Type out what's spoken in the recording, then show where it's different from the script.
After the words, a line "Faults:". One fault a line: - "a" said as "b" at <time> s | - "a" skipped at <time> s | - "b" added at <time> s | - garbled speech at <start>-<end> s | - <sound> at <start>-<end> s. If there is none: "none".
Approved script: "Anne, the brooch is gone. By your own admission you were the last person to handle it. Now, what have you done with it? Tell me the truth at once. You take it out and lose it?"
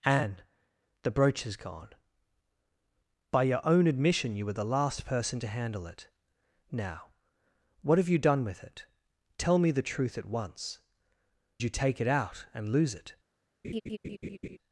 "Anne, the brooch is gone. By your own admission you were the last person to handle it. Now, what have you done with it? Tell me the truth at once. You take it out and lose it?"
Faults:
- laugh at 13.6-14.6 s